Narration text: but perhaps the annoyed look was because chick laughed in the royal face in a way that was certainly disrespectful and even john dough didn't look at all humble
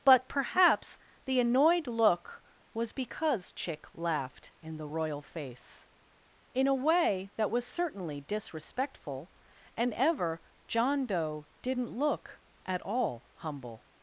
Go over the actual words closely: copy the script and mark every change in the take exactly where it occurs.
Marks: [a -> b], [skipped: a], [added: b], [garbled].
but perhaps the annoyed look was because chick laughed in the royal face in a way that was certainly disrespectful and [even -> ever] john dough didn't look at all humble